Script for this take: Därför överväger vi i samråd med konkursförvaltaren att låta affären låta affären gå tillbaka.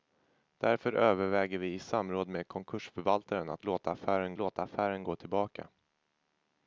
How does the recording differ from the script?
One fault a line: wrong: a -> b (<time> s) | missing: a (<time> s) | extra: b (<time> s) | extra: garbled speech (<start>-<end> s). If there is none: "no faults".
no faults